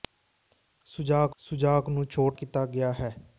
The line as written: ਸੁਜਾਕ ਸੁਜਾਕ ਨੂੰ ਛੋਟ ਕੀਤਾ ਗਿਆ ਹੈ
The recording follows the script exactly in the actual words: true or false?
true